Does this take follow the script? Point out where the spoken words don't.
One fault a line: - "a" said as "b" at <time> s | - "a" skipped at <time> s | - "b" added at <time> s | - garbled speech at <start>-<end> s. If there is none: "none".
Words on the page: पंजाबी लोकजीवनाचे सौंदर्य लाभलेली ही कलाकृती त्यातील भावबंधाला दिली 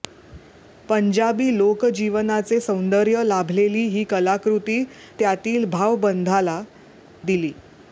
none